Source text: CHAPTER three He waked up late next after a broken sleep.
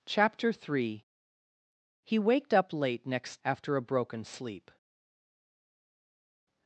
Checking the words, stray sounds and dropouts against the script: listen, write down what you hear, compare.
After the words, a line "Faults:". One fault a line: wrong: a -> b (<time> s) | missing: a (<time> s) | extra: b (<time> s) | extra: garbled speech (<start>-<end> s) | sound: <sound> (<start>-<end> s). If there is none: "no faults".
CHAPTER three He waked up late next after a broken sleep.
Faults:
no faults